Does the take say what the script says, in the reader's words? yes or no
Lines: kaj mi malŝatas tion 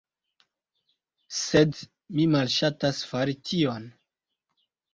no